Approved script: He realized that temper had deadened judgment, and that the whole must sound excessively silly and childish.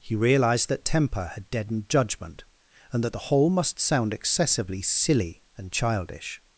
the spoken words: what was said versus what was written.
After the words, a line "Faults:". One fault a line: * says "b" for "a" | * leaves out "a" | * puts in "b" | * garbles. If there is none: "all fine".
He realized that temper had deadened judgment, and that the whole must sound excessively silly and childish.
Faults:
all fine